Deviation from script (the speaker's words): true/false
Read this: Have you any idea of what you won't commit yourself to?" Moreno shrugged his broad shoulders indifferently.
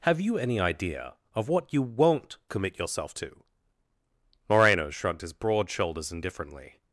false